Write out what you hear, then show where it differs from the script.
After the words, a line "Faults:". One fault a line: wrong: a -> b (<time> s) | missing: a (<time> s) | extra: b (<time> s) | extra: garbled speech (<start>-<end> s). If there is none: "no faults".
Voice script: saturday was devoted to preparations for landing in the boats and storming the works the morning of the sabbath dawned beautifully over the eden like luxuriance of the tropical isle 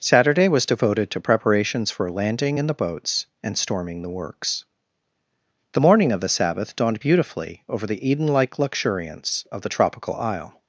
saturday was devoted to preparations for landing in the boats and storming the works the morning of the sabbath dawned beautifully over the eden like luxuriance of the tropical isle
Faults:
no faults